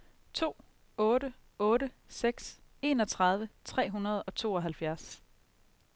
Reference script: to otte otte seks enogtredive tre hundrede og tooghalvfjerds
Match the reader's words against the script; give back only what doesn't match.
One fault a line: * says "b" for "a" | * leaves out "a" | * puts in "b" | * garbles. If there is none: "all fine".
all fine